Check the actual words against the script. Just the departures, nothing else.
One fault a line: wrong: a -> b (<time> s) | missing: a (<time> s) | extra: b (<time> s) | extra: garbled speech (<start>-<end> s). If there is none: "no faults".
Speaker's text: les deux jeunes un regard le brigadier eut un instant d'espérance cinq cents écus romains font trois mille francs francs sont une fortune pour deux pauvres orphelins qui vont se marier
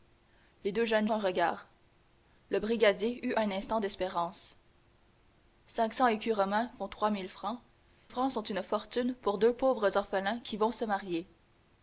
no faults